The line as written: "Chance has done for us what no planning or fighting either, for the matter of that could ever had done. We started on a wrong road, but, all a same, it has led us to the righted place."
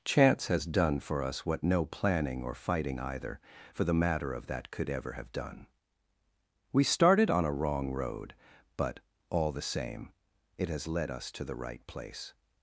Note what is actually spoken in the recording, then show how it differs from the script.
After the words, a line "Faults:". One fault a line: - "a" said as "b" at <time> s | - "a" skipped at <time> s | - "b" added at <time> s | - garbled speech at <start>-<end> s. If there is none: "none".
"Chance has done for us what no planning or fighting either, for the matter of that could ever have done. We started on a wrong road, but, all the same, it has led us to the right place."
Faults:
- "had" said as "have" at 5.1 s
- "a" said as "the" at 9.5 s
- "righted" said as "right" at 11.6 s